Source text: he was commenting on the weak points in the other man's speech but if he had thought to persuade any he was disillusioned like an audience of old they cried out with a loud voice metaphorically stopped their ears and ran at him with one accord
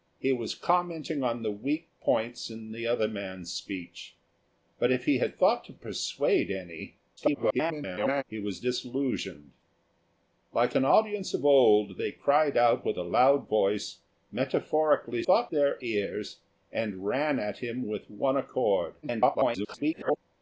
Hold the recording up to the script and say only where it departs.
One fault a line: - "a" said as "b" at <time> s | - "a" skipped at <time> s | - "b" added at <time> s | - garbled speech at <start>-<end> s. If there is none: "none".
- garbled speech at 7.2-8.2 s
- "stopped" said as "thought" at 15.2 s
- garbled speech at 19.0-20.2 s